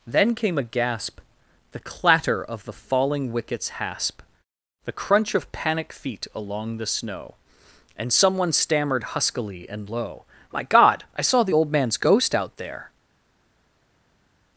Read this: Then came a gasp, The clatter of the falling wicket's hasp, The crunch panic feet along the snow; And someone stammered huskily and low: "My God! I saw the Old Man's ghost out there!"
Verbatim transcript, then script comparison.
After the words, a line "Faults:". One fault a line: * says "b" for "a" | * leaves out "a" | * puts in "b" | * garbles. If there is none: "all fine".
Then came a gasp, The clatter of the falling wicket's hasp, The crunch of panic feet along the snow; And someone stammered huskily and low: "My God! I saw the Old Man's ghost out there!"
Faults:
* puts in "of"